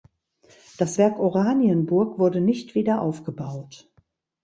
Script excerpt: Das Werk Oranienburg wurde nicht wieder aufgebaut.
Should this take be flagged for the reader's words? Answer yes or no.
no